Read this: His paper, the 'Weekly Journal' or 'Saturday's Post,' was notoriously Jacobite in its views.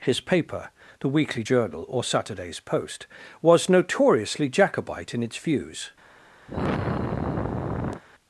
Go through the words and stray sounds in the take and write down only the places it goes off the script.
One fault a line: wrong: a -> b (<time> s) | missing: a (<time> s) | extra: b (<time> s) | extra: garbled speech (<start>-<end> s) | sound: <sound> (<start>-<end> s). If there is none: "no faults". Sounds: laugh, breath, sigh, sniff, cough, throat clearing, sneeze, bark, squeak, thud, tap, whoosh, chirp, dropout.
sound: sigh (6.5-8.0 s)